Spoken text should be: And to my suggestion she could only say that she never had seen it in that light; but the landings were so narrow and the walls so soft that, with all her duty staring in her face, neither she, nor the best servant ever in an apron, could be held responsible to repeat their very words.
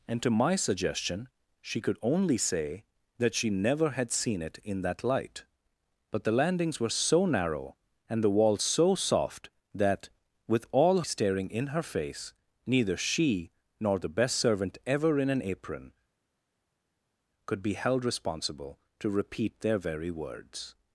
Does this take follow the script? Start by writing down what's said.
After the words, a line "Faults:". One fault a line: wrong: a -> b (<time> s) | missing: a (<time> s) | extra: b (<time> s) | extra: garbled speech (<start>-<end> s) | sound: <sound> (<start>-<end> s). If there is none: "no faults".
And to my suggestion she could only say that she never had seen it in that light; but the landings were so narrow and the walls so soft that, with all staring in her face, neither she, nor the best servant ever in an apron, could be held responsible to repeat their very words.
Faults:
missing: her duty (11.0 s)